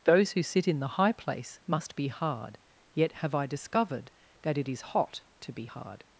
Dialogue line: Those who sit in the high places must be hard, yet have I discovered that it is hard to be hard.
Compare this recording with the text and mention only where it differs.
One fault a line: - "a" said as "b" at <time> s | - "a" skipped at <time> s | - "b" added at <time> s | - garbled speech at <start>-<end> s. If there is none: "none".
- "places" said as "place" at 1.1 s
- "hard" said as "hot" at 4.8 s